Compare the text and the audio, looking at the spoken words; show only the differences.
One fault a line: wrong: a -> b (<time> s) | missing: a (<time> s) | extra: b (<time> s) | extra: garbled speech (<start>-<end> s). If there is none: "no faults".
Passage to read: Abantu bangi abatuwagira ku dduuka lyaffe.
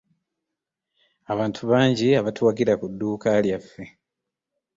no faults